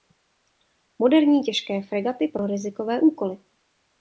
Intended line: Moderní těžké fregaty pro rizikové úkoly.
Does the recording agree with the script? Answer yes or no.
yes